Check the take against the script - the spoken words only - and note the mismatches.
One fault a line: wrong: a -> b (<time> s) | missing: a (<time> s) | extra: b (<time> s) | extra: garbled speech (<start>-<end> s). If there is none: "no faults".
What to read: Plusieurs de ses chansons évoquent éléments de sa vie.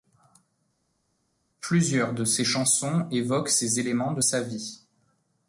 extra: ces (3.5 s)